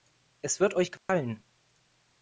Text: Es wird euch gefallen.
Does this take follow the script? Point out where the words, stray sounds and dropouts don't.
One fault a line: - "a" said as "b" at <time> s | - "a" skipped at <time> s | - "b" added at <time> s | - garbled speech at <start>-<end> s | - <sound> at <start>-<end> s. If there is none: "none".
- dropout at 1.0-1.1 s